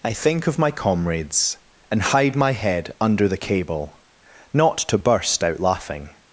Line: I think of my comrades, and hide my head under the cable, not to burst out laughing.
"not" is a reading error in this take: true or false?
false